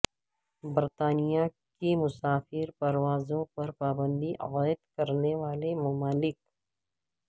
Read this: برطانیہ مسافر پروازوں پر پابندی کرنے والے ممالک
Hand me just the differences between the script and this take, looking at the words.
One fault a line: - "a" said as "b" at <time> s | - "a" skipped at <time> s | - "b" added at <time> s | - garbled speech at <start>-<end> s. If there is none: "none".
- "کی" added at 1.8 s
- "عائد" added at 4.4 s